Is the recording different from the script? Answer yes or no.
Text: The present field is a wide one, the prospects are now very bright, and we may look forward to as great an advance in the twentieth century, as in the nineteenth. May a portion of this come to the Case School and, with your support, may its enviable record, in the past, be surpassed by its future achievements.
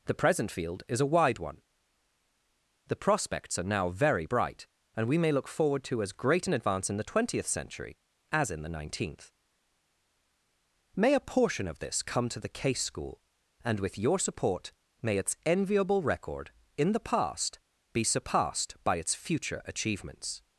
no